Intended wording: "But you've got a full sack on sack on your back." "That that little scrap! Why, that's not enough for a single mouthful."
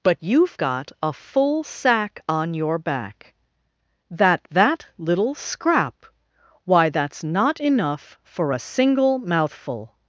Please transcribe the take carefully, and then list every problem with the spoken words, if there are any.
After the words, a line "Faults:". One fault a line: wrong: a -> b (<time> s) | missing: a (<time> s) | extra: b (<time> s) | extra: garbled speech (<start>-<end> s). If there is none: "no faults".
"But you've got a full sack on your back." "That that little scrap! Why, that's not enough for a single mouthful."
Faults:
missing: sack on (2.5 s)